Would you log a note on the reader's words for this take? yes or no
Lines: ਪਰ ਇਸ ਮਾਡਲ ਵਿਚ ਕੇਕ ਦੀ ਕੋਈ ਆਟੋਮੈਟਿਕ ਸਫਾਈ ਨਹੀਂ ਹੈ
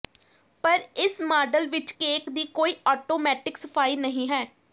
no